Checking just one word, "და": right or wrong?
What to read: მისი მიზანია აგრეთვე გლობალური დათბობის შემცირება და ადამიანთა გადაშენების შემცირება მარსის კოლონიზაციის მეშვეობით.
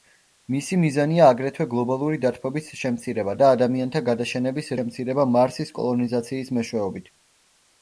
right